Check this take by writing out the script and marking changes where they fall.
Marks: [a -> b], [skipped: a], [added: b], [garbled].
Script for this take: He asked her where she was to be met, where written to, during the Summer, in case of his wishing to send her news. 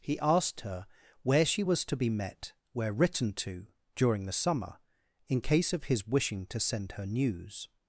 He asked her where she was to be met, where written to, during the Summer, in case of his wishing to send her news.